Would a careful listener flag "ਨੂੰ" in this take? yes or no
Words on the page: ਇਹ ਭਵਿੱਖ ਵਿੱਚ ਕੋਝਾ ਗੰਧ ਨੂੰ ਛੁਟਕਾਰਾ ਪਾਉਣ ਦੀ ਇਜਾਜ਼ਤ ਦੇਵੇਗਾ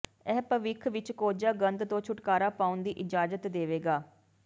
yes